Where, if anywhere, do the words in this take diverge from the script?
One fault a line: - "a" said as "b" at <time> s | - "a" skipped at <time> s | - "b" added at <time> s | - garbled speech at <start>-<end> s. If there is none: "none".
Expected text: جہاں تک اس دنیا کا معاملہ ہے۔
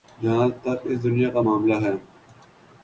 none